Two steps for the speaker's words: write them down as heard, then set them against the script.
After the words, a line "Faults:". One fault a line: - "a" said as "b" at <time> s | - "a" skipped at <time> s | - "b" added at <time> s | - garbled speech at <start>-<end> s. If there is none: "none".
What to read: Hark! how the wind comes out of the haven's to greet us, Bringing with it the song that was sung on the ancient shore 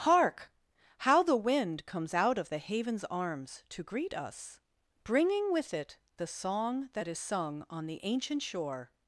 Hark! how the wind comes out of the haven's arms to greet us, Bringing with it the song that is sung on the ancient shore
Faults:
- "arms" added at 3.0 s
- "was" said as "is" at 7.1 s